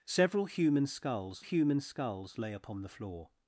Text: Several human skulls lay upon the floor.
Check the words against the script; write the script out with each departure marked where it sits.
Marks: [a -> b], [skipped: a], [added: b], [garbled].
Several human skulls [added: human skulls] lay upon the floor.